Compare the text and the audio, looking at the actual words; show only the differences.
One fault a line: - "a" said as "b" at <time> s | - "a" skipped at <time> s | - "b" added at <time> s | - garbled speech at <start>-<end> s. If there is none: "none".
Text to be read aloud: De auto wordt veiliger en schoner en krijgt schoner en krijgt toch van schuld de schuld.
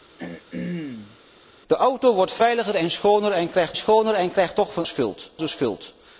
none